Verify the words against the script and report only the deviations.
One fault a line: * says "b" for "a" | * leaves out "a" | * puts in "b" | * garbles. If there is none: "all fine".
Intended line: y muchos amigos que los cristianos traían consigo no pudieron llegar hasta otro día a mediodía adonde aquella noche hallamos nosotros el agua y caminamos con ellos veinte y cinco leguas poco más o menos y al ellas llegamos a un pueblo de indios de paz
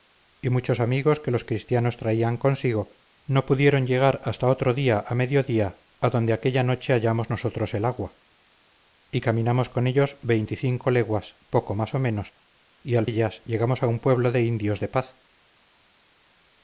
all fine